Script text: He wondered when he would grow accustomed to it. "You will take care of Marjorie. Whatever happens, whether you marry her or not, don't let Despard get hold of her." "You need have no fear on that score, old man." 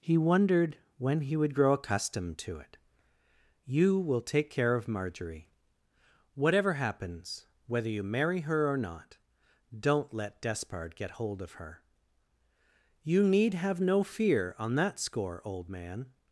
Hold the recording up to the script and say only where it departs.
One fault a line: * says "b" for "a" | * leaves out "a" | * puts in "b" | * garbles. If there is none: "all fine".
all fine